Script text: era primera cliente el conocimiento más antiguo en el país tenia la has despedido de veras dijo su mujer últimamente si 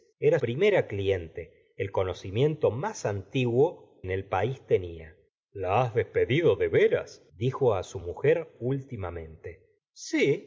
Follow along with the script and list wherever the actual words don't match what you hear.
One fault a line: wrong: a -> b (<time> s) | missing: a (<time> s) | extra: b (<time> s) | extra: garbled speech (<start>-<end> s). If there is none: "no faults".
no faults